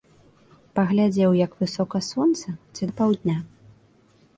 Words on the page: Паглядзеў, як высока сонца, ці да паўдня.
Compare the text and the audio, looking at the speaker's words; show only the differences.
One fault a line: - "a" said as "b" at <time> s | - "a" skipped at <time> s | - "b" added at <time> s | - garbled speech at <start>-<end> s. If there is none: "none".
none